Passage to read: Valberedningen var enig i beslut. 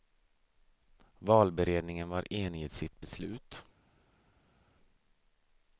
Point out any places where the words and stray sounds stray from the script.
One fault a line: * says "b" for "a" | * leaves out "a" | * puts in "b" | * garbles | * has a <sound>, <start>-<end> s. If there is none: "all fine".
* puts in "sitt"